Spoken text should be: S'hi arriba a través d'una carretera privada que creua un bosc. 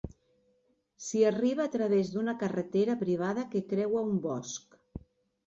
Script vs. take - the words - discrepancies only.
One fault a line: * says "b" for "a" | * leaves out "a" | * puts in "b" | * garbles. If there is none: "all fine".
all fine